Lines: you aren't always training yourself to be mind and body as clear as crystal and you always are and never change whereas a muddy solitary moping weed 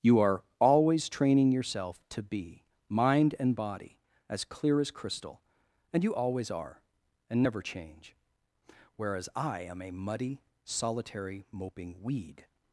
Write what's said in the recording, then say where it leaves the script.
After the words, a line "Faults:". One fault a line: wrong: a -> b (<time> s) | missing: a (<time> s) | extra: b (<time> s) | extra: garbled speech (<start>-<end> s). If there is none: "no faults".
you are always training yourself to be mind and body as clear as crystal and you always are and never change whereas i am a muddy solitary moping weed
Faults:
wrong: aren't -> are (0.2 s)
extra: i am (9.4 s)